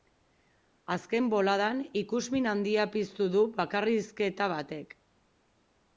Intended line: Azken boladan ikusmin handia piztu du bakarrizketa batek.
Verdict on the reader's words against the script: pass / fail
pass